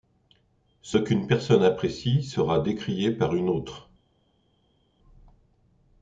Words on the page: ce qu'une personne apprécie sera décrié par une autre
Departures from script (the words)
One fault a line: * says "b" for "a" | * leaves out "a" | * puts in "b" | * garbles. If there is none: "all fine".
all fine